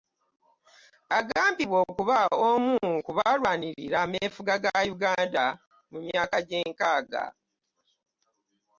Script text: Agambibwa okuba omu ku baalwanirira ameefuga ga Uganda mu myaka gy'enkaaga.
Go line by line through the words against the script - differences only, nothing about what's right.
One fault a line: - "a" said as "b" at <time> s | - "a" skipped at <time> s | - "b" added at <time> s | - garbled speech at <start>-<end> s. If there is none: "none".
none